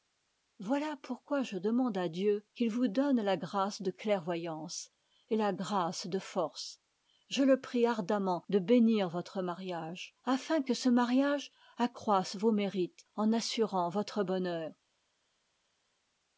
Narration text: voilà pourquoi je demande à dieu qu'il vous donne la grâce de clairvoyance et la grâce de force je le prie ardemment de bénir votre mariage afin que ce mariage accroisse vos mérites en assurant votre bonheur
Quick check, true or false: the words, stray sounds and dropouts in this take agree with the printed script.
true